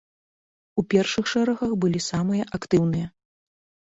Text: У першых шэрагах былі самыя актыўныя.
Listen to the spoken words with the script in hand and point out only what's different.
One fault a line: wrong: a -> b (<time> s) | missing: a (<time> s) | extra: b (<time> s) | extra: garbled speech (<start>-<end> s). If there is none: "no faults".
no faults